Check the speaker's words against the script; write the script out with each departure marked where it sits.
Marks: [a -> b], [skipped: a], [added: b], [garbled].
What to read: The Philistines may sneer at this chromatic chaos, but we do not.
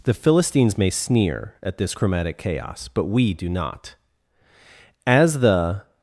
The Philistines may sneer at this chromatic chaos, but we do not. [added: As the]